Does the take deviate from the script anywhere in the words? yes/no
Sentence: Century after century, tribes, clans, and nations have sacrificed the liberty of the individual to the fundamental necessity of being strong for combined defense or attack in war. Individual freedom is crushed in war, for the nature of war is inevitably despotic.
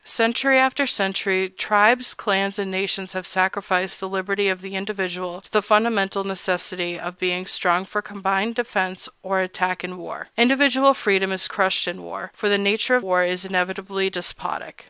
no